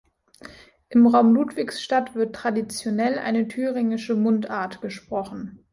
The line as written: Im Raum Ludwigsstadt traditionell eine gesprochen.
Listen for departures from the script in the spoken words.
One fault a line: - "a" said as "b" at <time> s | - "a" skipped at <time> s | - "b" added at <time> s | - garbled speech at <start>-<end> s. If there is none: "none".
- "wird" added at 2.1 s
- "thüringische Mundart" added at 3.5 s